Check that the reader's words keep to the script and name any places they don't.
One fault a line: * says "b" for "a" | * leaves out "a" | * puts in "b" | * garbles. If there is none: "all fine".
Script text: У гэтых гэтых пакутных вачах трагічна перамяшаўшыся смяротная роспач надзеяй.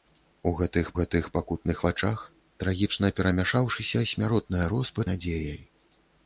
all fine